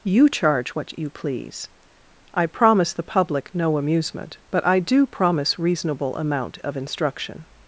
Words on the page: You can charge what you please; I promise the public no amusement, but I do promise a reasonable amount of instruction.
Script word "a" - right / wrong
wrong